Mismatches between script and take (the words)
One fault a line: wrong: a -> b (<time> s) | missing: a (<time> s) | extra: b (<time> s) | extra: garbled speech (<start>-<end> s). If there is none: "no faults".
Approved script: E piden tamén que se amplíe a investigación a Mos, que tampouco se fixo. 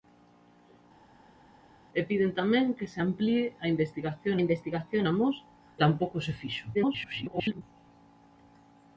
extra: investigación (4.4 s)
missing: que (5.4 s)
extra: garbled speech (6.7-7.6 s)